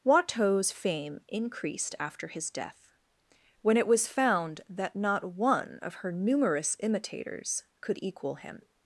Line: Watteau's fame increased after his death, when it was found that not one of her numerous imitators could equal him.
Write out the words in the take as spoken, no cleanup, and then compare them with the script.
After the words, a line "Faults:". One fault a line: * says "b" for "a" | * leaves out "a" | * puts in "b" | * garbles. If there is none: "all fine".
Watteau's fame increased after his death, when it was found that not one of her numerous imitators could equal him.
Faults:
all fine